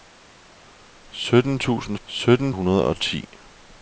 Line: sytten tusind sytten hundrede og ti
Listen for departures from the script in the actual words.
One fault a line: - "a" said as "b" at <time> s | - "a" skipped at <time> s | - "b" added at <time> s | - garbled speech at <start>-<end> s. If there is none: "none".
none